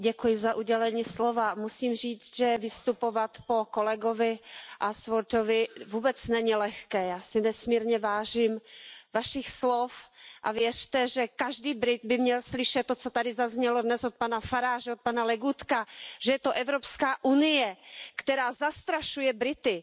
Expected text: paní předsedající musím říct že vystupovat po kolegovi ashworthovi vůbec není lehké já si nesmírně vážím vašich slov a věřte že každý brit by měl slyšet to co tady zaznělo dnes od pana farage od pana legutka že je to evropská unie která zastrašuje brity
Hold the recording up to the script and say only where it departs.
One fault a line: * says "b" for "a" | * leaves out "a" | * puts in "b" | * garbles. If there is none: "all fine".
all fine